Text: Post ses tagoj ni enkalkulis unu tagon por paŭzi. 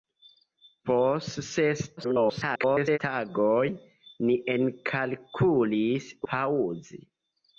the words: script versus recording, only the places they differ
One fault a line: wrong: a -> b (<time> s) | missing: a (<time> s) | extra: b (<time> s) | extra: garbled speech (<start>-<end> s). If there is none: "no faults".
extra: garbled speech (2.0-3.0 s)
missing: unu tagon por (6.1 s)